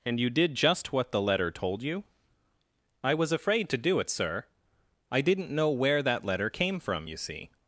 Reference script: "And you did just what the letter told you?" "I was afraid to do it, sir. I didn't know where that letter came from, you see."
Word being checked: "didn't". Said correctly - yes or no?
yes